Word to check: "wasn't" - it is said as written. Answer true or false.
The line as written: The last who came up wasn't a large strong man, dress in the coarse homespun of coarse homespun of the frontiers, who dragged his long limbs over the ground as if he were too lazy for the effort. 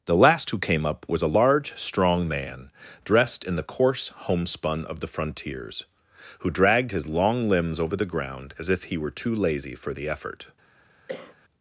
false